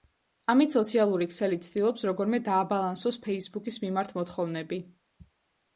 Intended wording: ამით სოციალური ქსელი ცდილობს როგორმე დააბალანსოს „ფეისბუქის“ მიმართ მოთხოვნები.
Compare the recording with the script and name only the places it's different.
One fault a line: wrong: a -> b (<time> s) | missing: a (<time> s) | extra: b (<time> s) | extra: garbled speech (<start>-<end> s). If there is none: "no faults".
no faults